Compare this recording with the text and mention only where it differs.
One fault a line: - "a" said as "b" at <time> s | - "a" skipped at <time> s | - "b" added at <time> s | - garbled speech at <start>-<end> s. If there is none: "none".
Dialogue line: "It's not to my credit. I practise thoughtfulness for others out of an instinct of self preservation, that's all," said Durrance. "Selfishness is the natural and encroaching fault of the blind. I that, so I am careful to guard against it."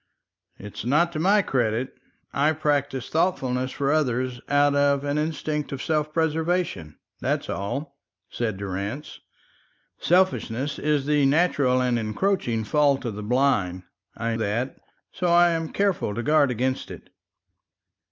none